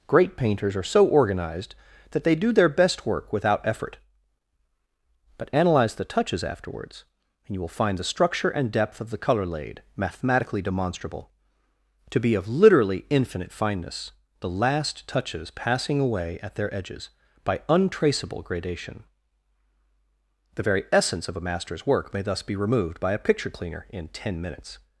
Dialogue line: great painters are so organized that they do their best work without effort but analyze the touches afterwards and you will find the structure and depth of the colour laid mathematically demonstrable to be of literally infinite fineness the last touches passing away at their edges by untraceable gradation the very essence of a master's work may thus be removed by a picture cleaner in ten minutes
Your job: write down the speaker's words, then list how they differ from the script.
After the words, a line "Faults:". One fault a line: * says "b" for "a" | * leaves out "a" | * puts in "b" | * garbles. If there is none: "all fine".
great painters are so organized that they do their best work without effort but analyze the touches afterwards and you will find the structure and depth of the colour laid mathematically demonstrable to be of literally infinite fineness the last touches passing away at their edges by untraceable gradation the very essence of a master's work may thus be removed by a picture cleaner in ten minutes
Faults:
all fine